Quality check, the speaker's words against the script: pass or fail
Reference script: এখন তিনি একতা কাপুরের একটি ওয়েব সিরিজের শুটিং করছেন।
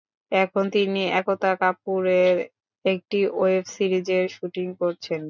pass